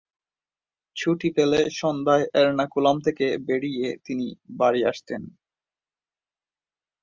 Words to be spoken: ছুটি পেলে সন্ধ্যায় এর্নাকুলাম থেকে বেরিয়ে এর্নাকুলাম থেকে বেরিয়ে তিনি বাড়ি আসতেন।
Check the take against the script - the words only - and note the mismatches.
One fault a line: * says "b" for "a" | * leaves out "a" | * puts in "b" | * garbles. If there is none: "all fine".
* leaves out "এর্নাকুলাম থেকে বেরিয়ে"